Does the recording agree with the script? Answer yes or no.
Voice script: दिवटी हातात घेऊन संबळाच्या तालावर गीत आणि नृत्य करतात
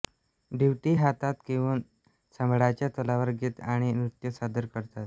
no